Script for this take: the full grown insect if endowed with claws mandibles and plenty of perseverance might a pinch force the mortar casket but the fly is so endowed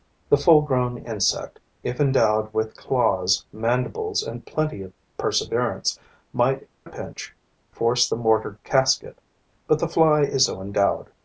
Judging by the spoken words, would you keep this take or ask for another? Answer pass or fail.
pass